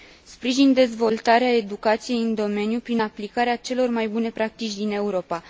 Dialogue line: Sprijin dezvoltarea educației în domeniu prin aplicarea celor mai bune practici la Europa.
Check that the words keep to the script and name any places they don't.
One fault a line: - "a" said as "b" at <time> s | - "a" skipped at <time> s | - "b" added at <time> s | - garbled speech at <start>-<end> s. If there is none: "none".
- "la" said as "din" at 4.8 s